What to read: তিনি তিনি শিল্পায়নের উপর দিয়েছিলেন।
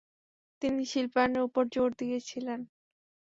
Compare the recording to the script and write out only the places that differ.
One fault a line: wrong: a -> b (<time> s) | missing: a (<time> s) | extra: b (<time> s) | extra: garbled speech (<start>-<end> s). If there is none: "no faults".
missing: তিনি (0.8 s)
extra: জোর (1.7 s)